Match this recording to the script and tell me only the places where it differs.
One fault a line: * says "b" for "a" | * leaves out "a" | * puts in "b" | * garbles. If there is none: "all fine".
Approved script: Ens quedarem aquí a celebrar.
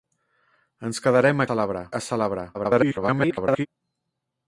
* says "celebrar" for "aquí"
* garbles